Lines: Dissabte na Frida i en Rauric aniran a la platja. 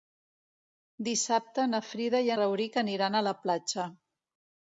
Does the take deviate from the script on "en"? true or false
true